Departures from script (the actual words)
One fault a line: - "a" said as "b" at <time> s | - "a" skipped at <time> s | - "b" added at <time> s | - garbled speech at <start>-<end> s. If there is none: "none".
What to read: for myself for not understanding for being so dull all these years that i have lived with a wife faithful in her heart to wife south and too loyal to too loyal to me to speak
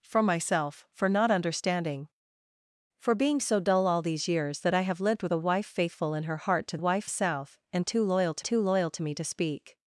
none